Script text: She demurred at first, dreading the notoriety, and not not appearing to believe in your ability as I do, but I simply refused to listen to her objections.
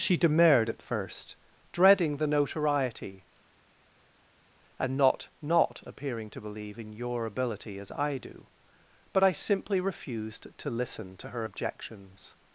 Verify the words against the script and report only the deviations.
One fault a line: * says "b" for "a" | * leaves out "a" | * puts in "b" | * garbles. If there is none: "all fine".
all fine